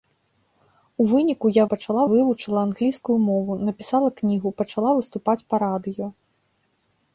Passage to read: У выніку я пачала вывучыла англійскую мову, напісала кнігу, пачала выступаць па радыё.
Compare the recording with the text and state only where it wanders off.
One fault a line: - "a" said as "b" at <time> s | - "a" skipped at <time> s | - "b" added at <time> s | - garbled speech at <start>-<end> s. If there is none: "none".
none